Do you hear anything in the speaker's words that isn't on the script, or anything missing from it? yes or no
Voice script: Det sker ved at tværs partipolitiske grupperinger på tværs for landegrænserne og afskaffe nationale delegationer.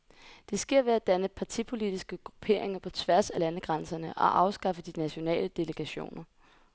yes